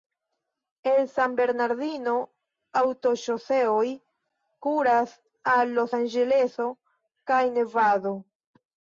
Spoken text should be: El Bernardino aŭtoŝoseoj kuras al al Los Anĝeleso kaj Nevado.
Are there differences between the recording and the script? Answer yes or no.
yes